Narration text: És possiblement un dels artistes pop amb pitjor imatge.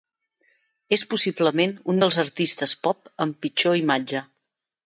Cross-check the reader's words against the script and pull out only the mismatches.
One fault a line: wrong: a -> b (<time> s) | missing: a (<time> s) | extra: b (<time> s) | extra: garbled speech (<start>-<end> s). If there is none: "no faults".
no faults